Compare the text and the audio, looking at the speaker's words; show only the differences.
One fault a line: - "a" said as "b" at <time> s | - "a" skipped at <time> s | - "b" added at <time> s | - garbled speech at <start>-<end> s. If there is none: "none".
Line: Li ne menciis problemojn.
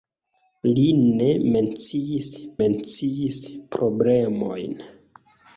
- "menciis" added at 2.6 s